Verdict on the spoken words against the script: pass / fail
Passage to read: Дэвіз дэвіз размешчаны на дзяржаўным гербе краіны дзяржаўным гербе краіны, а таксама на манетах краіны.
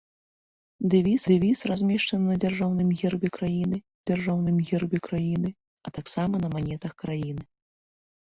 pass